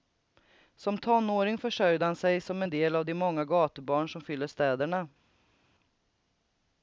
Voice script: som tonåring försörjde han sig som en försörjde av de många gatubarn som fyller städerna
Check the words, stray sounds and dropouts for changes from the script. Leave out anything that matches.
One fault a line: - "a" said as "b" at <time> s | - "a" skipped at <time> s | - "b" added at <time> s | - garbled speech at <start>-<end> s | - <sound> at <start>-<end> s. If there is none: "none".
- "försörjde" said as "del" at 2.7 s